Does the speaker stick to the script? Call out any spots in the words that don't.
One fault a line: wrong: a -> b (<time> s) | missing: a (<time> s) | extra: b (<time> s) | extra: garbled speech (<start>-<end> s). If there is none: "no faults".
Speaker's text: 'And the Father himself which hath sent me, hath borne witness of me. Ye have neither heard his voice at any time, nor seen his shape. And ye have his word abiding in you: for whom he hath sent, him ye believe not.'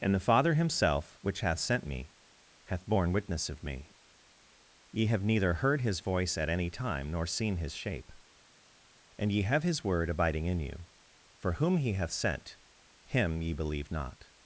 no faults